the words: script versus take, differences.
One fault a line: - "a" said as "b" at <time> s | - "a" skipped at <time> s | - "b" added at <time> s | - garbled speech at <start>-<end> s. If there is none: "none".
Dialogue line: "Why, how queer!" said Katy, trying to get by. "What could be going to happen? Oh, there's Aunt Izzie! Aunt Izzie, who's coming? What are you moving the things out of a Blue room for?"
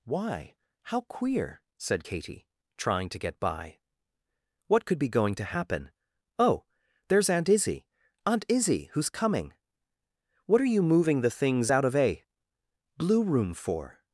none